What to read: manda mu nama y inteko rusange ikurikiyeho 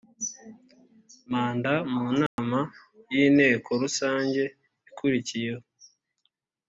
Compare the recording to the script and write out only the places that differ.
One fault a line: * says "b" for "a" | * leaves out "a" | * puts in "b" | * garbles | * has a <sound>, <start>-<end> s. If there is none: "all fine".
* has a dropout, 2.3-2.4 s